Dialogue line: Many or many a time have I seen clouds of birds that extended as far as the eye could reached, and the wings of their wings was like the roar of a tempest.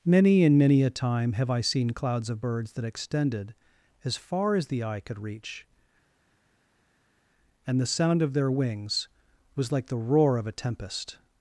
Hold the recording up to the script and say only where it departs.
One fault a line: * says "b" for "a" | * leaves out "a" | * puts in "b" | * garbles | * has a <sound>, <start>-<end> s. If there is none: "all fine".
* says "and" for "or"
* says "reach" for "reached"
* says "sound" for "wings"